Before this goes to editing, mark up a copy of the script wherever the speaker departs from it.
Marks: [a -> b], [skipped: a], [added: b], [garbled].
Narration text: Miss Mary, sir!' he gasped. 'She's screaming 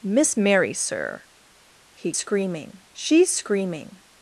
Miss Mary, sir!' he [gasped. -> screaming] 'She's screaming